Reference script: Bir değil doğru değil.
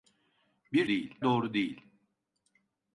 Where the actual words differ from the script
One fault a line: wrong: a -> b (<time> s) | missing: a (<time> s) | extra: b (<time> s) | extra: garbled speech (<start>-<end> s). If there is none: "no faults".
no faults